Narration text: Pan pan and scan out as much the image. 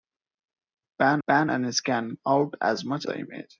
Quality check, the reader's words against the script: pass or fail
pass